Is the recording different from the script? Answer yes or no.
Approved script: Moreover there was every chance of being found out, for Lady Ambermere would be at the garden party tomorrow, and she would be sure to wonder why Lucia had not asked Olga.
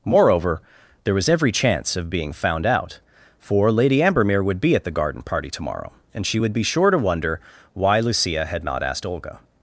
no